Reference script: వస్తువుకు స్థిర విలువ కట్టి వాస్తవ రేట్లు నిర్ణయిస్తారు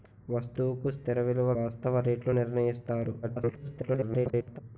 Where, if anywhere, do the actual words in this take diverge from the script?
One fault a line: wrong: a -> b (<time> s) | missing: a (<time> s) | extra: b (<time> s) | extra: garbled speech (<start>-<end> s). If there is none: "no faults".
missing: కట్టి (1.5 s)
extra: garbled speech (3.2-4.6 s)